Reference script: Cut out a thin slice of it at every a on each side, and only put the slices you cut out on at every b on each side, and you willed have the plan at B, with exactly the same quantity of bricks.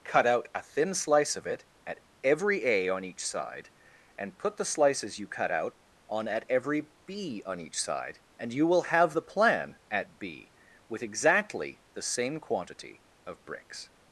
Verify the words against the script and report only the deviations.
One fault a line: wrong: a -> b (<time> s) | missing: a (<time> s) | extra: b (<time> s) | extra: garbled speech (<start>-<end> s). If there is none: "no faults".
missing: only (4.4 s)
wrong: willed -> will (8.7 s)